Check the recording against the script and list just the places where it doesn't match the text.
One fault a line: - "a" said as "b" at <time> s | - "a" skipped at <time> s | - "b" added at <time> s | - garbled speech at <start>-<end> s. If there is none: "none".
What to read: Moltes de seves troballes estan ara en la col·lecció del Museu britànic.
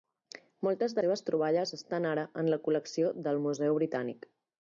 none